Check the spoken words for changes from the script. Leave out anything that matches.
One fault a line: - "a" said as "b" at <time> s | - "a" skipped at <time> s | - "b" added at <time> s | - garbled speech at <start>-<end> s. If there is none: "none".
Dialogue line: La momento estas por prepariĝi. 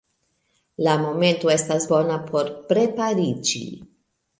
- "bona" added at 1.9 s